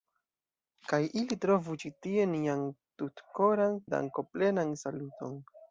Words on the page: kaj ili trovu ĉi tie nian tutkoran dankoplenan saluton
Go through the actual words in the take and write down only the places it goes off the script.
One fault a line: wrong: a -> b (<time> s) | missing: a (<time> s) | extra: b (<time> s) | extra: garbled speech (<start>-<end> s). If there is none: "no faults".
no faults